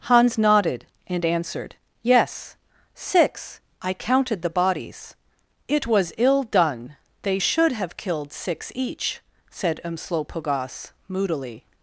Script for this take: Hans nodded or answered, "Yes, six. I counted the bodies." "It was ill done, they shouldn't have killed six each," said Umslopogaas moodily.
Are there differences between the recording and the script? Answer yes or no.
yes